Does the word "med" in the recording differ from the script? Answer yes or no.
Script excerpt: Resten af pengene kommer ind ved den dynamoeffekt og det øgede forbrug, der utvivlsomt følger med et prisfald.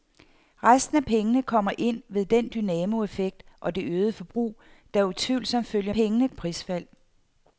yes